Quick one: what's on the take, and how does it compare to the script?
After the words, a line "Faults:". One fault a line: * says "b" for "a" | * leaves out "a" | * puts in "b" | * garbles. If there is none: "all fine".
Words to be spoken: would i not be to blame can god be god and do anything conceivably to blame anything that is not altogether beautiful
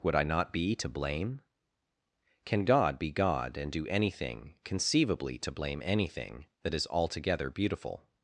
would i not be to blame can god be god and do anything conceivably to blame anything that is altogether beautiful
Faults:
* leaves out "not"